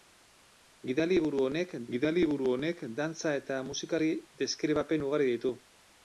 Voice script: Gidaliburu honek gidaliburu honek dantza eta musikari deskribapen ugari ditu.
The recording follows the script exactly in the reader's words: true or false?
true